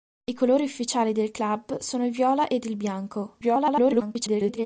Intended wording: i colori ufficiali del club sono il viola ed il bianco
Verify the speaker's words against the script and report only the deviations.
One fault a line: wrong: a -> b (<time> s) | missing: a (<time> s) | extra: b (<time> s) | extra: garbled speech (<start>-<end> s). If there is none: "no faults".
extra: garbled speech (3.4-4.7 s)